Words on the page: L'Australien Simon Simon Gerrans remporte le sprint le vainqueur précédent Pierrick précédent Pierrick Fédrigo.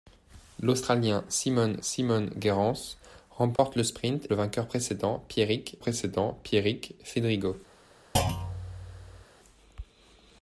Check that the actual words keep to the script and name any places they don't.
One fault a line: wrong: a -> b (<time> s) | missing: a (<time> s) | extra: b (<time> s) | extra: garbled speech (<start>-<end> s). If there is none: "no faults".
no faults